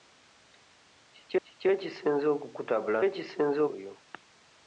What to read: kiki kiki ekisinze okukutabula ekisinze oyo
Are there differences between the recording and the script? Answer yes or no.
no